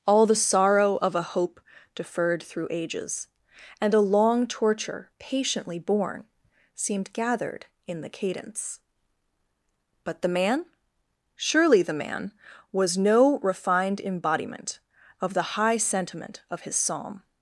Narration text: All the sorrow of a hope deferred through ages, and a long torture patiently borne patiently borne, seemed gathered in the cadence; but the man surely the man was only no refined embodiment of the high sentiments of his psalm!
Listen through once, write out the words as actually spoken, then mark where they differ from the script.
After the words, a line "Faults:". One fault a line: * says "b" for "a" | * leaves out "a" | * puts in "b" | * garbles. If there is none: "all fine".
All the sorrow of a hope deferred through ages, and a long torture patiently borne, seemed gathered in the cadence; but the man surely the man was no refined embodiment of the high sentiment of his psalm!
Faults:
* leaves out "patiently borne"
* leaves out "only"
* says "sentiment" for "sentiments"